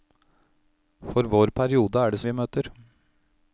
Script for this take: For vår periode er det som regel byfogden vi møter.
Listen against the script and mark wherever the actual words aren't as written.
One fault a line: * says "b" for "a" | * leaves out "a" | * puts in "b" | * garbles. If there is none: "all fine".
* leaves out "som regel byfogden"